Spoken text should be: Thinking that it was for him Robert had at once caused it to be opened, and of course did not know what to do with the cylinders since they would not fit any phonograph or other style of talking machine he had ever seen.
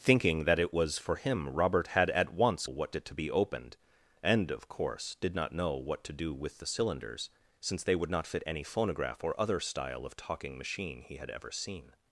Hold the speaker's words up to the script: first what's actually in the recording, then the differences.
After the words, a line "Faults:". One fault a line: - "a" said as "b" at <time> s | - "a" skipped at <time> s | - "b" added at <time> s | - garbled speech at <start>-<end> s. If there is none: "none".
Thinking that it was for him Robert had at once what it to be opened, and of course did not know what to do with the cylinders since they would not fit any phonograph or other style of talking machine he had ever seen.
Faults:
- "caused" said as "what" at 2.6 s